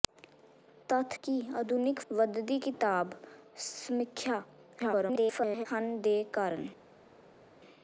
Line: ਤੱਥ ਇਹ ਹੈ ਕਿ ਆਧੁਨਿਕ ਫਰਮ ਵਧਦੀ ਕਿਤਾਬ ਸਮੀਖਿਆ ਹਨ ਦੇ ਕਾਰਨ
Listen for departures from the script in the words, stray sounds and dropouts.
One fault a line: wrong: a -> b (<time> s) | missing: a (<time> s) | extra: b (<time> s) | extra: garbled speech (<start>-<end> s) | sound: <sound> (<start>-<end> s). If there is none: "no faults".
missing: ਇਹ ਹੈ (1.2 s)
missing: ਫਰਮ (2.0 s)
extra: garbled speech (4.8-5.7 s)